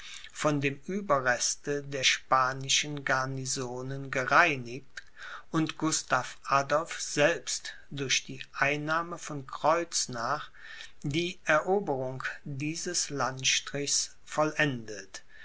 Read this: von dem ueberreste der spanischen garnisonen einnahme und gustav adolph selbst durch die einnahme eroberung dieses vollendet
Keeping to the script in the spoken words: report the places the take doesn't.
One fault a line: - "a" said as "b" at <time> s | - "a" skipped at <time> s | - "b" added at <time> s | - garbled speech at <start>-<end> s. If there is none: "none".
- "einnahme" said as "gereinigt" at 4.1 s
- "von kreuznach die" added at 9.2 s
- "landstrichs" added at 13.1 s